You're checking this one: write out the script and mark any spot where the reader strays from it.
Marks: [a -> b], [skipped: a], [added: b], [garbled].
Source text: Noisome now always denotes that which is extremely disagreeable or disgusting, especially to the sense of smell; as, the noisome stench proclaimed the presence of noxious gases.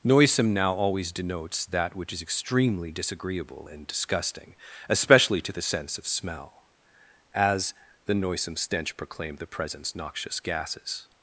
Noisome now always denotes that which is extremely disagreeable [or -> and] disgusting, especially to the sense of smell; as, the noisome stench proclaimed the presence [skipped: of] noxious gases.